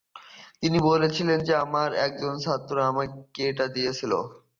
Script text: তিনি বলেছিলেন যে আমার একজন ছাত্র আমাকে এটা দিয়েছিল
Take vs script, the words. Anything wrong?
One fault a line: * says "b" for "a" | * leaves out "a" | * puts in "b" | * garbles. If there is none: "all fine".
all fine